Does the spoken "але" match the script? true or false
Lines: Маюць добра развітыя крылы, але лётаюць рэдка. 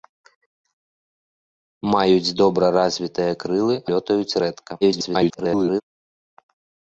false